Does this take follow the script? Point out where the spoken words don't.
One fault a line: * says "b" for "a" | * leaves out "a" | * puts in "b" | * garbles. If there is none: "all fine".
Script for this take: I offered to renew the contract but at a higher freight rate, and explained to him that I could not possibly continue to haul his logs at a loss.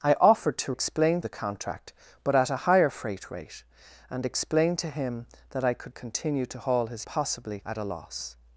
* says "explained" for "renew"
* leaves out "not possibly"
* says "possibly" for "logs"